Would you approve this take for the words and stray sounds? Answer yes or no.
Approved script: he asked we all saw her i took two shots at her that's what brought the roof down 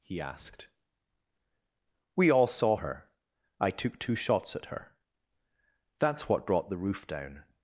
yes